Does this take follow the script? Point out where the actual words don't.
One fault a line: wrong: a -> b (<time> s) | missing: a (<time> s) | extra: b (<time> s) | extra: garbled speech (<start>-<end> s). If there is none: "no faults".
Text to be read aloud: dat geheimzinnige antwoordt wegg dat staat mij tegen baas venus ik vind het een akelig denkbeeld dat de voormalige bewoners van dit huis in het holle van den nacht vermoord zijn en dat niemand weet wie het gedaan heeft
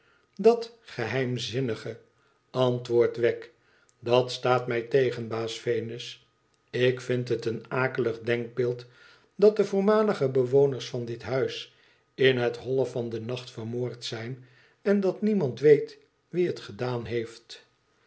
no faults